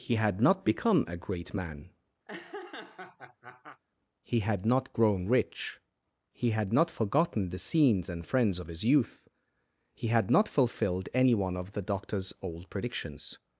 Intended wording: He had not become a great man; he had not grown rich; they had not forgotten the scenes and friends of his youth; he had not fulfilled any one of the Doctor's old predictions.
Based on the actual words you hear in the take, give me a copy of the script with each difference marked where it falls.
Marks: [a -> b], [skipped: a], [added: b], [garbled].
He had not become a great man; he had not grown rich; [they -> he] had not forgotten the scenes and friends of his youth; he had not fulfilled any one of the Doctor's old predictions.